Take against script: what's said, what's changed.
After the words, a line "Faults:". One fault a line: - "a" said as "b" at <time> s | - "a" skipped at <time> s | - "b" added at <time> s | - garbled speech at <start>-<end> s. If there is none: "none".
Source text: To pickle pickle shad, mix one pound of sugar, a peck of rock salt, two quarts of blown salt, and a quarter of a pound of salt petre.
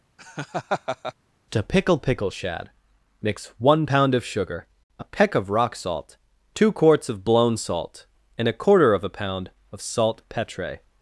To pickle pickle shad, mix one pound of sugar, a peck of rock salt, two quarts of blown salt, and a quarter of a pound of salt petre.
Faults:
none